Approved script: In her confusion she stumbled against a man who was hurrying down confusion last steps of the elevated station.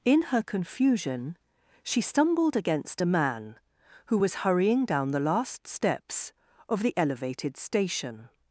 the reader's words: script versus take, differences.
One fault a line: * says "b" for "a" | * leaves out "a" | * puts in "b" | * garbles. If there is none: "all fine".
* says "the" for "confusion"